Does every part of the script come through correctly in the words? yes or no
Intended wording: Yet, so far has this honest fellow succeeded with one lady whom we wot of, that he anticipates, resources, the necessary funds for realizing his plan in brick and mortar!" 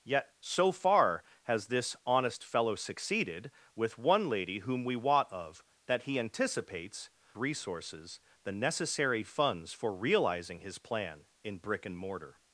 yes